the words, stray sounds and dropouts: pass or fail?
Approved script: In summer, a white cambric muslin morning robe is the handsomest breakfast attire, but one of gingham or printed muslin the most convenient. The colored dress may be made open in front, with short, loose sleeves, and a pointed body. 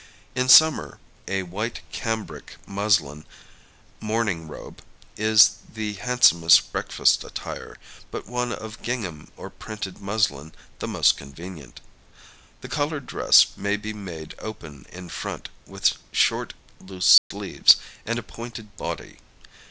fail